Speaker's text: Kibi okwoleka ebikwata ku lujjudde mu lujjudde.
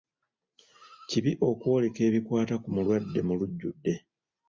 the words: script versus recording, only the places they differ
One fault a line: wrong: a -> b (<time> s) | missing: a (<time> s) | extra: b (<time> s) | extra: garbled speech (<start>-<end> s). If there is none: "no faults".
wrong: lujjudde -> mulwadde (2.8 s)